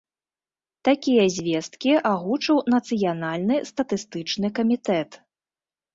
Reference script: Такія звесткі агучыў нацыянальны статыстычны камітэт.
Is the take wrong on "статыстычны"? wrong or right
right